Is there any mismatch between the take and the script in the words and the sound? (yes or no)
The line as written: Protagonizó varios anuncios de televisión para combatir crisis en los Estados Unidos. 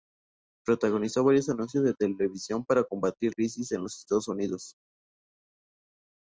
no